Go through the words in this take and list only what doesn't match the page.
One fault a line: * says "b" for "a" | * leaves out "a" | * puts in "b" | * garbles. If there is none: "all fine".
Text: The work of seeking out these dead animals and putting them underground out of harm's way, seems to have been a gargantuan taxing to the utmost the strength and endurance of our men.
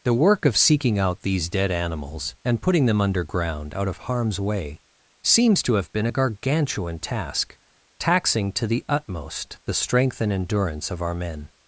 * puts in "task"